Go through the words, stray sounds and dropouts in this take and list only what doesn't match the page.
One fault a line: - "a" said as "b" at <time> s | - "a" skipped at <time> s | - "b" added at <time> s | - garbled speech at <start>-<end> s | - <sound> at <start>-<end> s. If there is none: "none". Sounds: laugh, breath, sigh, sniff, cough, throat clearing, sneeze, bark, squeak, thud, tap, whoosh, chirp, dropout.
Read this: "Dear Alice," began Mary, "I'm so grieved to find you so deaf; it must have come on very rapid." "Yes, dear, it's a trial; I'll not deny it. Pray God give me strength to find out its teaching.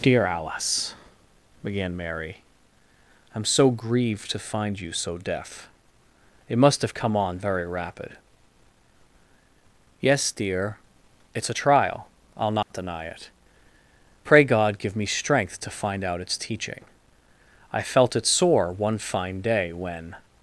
- dropout at 12.6-12.7 s
- "I felt it sore one fine day when" added at 17.7 s